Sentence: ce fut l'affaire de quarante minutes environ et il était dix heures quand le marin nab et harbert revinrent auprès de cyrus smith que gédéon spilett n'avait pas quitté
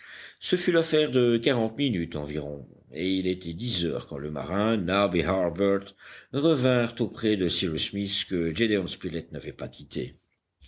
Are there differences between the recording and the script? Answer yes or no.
no